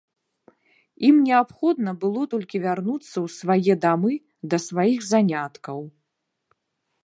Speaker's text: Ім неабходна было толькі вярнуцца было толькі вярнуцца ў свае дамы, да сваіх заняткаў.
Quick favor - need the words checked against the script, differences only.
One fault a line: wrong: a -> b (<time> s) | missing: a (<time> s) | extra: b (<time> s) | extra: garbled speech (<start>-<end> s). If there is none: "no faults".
missing: было толькі вярнуцца (3.1 s)